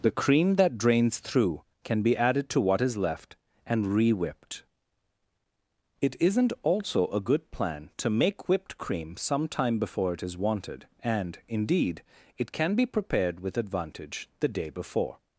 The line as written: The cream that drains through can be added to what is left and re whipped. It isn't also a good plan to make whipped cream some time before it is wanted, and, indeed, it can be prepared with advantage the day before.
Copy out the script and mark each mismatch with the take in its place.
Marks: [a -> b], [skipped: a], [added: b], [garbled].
The cream that drains through can be added to what is left and re whipped. It isn't also a good plan to make whipped cream some time before it is wanted, and, indeed, it can be prepared with advantage the day before.